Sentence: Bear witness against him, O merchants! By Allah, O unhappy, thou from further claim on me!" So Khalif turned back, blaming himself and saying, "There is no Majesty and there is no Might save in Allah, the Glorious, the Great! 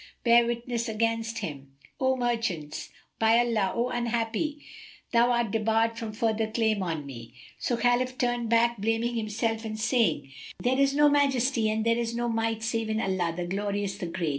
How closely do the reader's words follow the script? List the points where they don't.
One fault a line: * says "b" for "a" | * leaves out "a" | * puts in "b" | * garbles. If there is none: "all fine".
* puts in "art debarred"